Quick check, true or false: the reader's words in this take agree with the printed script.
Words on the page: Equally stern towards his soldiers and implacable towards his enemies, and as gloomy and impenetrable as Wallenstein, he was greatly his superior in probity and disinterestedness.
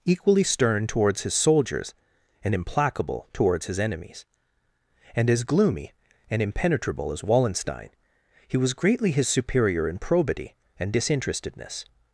true